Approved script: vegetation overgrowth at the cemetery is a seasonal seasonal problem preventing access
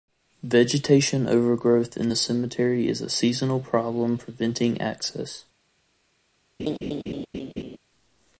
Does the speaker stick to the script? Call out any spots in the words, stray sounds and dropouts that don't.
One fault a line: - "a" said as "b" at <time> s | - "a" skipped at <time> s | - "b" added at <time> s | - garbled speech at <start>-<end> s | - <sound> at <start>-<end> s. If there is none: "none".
- "at" said as "in" at 1.9 s
- "seasonal" skipped at 3.6 s
- laugh at 6.6-7.8 s